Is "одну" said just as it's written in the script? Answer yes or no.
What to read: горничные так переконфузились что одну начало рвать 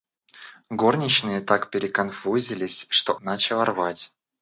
no